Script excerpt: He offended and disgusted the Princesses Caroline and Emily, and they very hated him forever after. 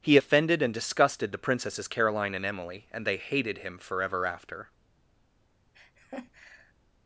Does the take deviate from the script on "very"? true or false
true